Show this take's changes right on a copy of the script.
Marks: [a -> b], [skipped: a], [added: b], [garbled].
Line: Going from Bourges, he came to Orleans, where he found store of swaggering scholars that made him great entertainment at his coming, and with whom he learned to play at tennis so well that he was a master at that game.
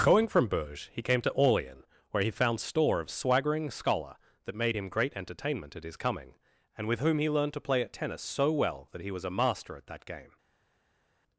Going from Bourges, he came to Orleans, where he found store of swaggering [scholars -> scholar] that made him great entertainment at his coming, and with whom he learned to play at tennis so well that he was a master at that game.